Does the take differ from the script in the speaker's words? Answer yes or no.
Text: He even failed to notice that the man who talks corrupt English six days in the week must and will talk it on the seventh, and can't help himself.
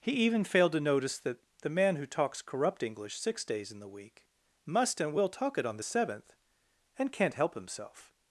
no